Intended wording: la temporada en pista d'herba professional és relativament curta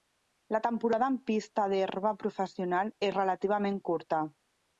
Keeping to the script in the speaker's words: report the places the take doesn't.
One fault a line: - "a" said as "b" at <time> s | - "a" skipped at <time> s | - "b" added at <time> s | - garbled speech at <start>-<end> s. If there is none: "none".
none